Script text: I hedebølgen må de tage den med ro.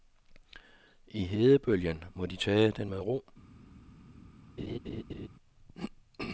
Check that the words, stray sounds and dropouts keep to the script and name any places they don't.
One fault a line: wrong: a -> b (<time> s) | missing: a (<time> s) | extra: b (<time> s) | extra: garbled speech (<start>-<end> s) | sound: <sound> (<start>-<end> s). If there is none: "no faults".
sound: laugh (4.6-5.3 s)